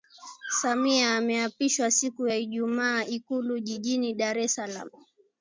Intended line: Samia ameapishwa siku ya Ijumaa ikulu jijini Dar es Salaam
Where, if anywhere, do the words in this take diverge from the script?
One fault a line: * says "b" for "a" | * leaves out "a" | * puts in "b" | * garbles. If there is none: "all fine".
all fine